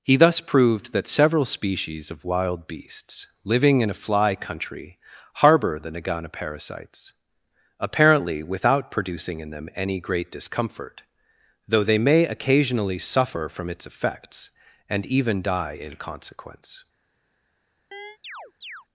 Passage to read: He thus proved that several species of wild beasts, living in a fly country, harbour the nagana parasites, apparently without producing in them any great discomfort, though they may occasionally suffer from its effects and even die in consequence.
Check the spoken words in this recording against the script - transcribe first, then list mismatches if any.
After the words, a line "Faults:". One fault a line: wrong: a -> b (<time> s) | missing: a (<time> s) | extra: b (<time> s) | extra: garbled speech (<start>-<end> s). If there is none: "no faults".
He thus proved that several species of wild beasts, living in a fly country, harbour the nagana parasites, apparently without producing in them any great discomfort, though they may occasionally suffer from its effects and even die in consequence.
Faults:
no faults